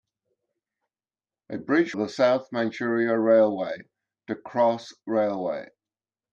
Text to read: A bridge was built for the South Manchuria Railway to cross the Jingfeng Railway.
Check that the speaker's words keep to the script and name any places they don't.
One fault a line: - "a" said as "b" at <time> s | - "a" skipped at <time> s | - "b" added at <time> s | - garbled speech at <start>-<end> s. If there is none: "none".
- "was built for" skipped at 1.9 s
- "the Jingfeng" skipped at 4.9 s